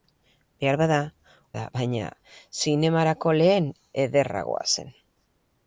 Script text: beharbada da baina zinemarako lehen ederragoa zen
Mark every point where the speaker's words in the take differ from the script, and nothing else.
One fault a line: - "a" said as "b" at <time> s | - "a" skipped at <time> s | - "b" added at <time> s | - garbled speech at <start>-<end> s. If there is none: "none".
none